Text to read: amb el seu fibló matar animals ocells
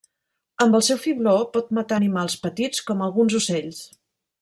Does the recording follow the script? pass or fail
fail